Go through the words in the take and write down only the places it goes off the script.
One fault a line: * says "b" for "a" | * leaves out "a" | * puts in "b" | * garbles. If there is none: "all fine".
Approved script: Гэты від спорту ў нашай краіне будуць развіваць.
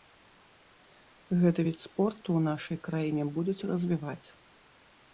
all fine